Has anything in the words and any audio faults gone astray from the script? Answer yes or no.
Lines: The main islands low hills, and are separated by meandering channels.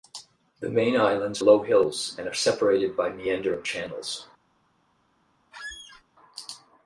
yes